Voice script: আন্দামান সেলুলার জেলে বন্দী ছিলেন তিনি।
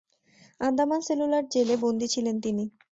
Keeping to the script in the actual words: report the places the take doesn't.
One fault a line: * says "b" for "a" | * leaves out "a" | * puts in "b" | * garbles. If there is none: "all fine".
all fine